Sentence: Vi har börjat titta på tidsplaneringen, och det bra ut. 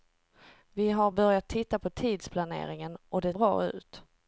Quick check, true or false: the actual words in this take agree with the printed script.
true